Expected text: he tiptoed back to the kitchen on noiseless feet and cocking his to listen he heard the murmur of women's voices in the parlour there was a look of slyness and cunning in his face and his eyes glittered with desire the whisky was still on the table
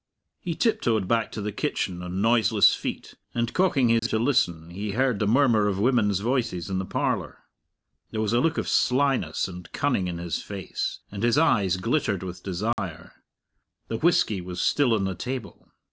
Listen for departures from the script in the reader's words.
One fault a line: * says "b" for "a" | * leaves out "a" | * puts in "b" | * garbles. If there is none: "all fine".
all fine